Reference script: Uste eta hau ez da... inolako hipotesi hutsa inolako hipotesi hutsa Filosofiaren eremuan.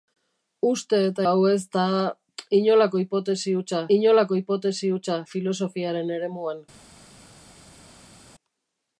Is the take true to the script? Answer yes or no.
yes